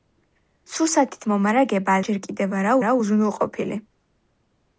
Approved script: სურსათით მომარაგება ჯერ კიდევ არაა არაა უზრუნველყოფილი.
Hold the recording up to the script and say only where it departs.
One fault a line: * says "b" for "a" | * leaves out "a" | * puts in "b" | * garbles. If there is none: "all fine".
all fine